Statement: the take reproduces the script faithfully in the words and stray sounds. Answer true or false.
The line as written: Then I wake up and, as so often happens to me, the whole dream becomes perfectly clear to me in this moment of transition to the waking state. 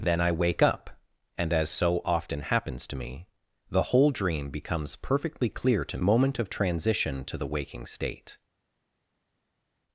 false